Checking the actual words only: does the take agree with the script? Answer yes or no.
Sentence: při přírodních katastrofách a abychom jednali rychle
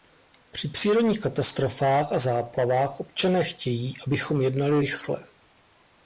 no